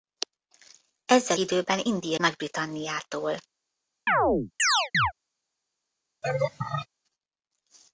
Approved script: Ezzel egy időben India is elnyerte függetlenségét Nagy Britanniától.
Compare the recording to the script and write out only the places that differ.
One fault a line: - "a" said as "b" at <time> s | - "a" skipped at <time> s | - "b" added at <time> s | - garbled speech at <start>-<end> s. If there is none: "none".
- "egy" skipped at 1.4 s
- "is elnyerte függetlenségét" skipped at 2.2 s